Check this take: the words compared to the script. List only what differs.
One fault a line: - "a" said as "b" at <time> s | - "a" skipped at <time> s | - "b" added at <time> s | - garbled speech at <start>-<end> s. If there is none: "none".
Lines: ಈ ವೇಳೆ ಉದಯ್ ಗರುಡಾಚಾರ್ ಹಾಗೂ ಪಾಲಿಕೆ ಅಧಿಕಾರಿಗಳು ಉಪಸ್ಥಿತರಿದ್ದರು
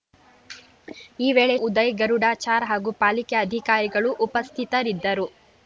none